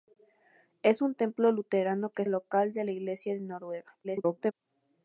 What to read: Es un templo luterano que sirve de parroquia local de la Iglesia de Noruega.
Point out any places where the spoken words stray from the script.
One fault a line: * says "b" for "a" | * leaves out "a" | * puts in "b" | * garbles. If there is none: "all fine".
* leaves out "sirve de parroquia"
* garbles